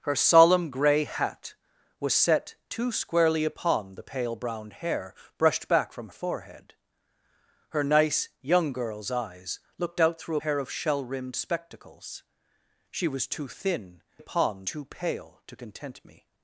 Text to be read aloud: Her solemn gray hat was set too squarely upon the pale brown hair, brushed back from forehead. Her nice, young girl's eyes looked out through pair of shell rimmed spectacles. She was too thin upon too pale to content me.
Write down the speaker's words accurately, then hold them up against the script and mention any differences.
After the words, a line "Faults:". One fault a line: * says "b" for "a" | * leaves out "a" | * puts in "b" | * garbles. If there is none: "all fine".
Her solemn gray hat was set too squarely upon the pale brown hair, brushed back from forehead. Her nice, young girl's eyes looked out through pair of shell rimmed spectacles. She was too thin upon too pale to content me.
Faults:
all fine